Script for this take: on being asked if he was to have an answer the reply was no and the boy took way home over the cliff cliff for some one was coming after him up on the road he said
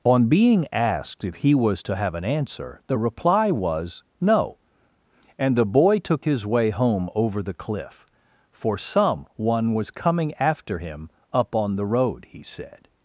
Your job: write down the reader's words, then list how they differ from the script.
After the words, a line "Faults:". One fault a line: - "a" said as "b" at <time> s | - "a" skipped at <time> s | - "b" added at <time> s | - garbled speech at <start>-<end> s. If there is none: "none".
on being asked if he was to have an answer the reply was no and the boy took his way home over the cliff for some one was coming after him up on the road he said
Faults:
- "his" added at 6.2 s
- "cliff" skipped at 8.1 s